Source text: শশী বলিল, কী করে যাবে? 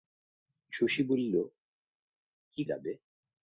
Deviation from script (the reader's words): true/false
true